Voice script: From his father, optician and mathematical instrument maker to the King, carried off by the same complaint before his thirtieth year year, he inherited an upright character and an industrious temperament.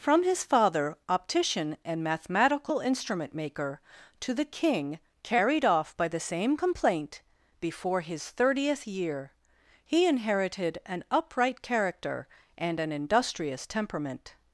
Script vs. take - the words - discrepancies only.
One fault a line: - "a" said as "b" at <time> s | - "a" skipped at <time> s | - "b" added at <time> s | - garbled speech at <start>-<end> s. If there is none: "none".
- "year" skipped at 9.3 s